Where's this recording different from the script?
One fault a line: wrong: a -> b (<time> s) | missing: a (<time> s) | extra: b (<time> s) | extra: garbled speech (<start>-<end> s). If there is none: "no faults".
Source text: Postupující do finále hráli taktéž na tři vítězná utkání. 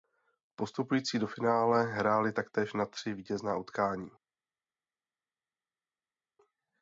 no faults